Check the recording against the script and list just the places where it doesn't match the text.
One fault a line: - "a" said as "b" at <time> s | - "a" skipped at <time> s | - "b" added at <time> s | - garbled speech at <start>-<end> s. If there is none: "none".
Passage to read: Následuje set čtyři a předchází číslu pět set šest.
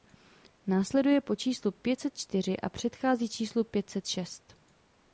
- "po číslu pět" added at 1.2 s